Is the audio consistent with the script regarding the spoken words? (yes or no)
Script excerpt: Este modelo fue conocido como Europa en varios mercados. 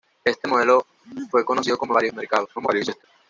no